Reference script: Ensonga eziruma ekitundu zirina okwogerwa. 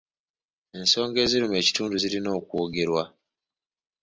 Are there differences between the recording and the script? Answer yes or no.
no